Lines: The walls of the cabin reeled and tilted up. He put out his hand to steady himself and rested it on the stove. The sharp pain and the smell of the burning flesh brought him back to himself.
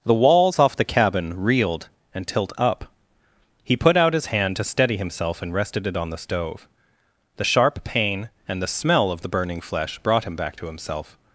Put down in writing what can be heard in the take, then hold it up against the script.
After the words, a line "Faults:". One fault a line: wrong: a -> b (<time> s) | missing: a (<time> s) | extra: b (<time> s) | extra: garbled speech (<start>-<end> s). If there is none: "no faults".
The walls off the cabin reeled and tilt up. He put out his hand to steady himself and rested it on the stove. The sharp pain and the smell of the burning flesh brought him back to himself.
Faults:
wrong: of -> off (0.6 s)
wrong: tilted -> tilt (2.3 s)